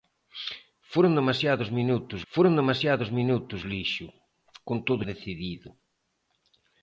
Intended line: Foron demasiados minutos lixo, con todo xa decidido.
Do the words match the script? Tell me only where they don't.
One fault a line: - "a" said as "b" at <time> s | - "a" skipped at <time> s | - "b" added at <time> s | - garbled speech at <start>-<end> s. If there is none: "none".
- "foron demasiados minutos" added at 2.3 s
- "xa" skipped at 5.0 s